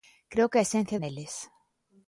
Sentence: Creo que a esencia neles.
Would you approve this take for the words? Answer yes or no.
yes